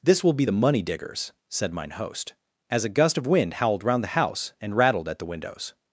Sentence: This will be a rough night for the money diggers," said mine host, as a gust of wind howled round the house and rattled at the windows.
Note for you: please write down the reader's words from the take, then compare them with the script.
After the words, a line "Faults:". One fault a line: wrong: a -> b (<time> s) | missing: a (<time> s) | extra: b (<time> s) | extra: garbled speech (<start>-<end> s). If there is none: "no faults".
This will be the money diggers," said mine host, as a gust of wind howled round the house and rattled at the windows.
Faults:
missing: a rough night for (0.5 s)